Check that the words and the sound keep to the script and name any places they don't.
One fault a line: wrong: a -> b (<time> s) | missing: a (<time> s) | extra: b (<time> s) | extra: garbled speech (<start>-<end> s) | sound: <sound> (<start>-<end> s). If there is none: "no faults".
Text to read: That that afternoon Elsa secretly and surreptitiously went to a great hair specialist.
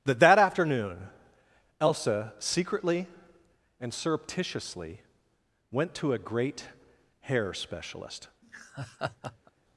sound: laugh (8.4-9.5 s)